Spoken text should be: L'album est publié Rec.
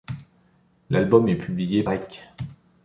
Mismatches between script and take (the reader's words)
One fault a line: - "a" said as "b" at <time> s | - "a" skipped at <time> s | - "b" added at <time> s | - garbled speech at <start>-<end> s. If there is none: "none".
none